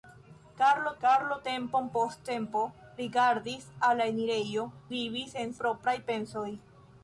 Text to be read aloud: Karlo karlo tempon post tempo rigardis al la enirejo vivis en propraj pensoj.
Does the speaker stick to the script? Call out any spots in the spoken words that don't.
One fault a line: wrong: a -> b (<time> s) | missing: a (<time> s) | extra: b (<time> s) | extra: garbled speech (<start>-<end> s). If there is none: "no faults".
no faults